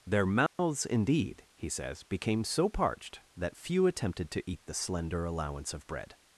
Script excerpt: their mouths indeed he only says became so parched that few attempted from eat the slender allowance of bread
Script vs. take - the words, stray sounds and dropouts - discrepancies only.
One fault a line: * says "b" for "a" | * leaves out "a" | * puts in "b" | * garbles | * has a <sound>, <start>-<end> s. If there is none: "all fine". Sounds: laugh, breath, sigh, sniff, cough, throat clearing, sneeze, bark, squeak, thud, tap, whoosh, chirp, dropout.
* has a dropout, 0.5-0.6 s
* leaves out "only"
* says "to" for "from"